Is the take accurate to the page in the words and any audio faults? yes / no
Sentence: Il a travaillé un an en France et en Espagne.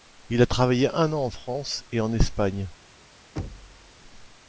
no